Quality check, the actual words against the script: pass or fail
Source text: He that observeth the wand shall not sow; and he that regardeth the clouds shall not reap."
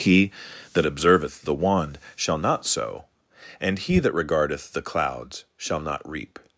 pass